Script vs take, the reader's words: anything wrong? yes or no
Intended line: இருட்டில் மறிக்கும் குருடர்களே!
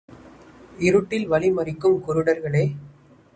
yes